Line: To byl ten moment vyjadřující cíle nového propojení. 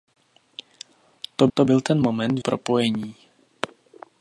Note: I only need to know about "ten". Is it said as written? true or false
true